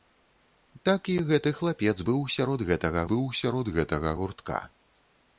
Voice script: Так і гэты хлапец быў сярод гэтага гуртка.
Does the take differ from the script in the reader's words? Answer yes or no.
yes